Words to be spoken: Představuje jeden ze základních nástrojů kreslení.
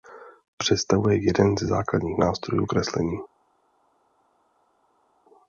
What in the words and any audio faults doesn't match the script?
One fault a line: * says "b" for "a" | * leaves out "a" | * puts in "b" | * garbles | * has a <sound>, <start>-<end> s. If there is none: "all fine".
all fine